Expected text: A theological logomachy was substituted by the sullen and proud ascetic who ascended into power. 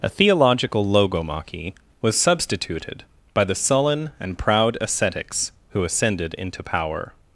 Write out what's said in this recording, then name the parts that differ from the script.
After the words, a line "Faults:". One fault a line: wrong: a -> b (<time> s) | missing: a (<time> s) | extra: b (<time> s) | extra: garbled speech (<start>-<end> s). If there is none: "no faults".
A theological logomachy was substituted by the sullen and proud ascetics who ascended into power.
Faults:
wrong: ascetic -> ascetics (4.8 s)